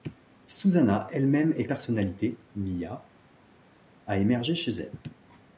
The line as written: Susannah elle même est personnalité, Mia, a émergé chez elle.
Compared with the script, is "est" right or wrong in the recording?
right